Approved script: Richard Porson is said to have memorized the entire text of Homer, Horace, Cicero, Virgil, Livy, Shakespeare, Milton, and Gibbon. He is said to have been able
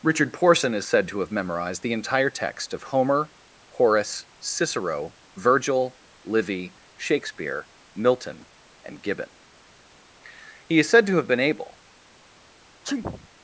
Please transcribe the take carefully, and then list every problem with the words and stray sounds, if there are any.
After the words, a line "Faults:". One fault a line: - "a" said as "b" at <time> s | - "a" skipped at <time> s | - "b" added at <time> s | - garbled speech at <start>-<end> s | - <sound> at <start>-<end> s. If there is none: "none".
Richard Porson is said to have memorized the entire text of Homer, Horace, Cicero, Virgil, Livy, Shakespeare, Milton, and Gibbon. He is said to have been able
Faults:
- sneeze at 12.8-13.3 s